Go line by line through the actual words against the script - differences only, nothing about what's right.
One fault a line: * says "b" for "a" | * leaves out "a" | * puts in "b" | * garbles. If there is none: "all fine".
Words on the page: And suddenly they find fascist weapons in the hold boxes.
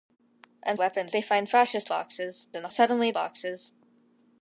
* says "weapons" for "suddenly"
* says "boxes" for "weapons"
* says "suddenly" for "hold"